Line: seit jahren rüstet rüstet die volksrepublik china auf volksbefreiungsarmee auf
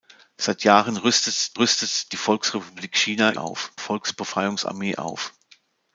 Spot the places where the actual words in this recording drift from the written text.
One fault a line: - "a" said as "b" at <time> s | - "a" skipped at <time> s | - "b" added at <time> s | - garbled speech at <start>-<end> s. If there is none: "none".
none